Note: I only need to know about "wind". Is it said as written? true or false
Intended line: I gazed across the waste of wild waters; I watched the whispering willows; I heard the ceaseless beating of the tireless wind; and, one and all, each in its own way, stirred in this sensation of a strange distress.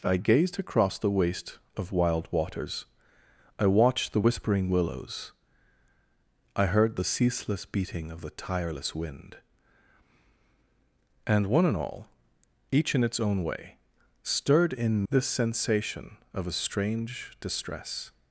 true